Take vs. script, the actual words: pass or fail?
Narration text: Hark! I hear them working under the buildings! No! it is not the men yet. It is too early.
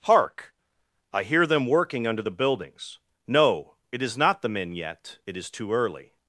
pass